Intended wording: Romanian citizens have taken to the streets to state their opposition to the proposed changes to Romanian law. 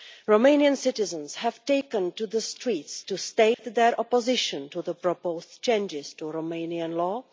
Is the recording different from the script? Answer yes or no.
no